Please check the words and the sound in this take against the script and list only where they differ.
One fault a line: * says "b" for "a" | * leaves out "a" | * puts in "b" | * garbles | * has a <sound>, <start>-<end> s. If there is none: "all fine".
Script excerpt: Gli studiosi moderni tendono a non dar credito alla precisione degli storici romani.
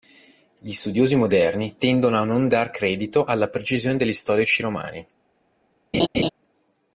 * has a laugh, 5.9-6.3 s